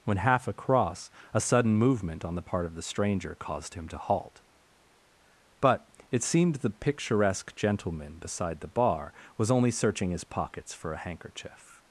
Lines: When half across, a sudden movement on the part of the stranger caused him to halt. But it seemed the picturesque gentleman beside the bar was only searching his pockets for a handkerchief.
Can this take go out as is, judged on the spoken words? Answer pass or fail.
pass